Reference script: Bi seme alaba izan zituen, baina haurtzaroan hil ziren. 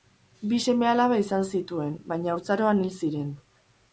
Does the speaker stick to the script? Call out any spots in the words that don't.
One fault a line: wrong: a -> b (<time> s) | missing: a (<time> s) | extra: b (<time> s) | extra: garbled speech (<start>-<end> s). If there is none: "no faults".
no faults